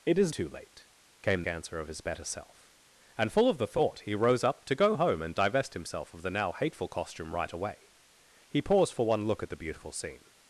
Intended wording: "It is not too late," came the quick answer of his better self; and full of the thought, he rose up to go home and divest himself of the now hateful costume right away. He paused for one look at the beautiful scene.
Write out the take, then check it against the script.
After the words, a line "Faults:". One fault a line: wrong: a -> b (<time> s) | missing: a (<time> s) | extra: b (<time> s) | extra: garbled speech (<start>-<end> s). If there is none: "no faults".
"It is too late," came answer of his better self; and full of the thought, he rose up to go home and divest himself of the now hateful costume right away. He paused for one look at the beautiful scene.
Faults:
missing: not (0.3 s)
missing: the quick (1.4 s)